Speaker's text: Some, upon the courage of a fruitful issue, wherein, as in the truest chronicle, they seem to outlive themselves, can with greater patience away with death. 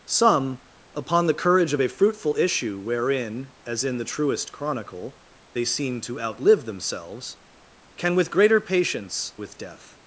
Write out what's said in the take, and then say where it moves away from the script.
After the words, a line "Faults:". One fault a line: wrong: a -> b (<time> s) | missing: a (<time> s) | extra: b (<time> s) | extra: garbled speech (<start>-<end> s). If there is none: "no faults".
Some, upon the courage of a fruitful issue, wherein, as in the truest chronicle, they seem to outlive themselves, can with greater patience with death.
Faults:
missing: away (9.3 s)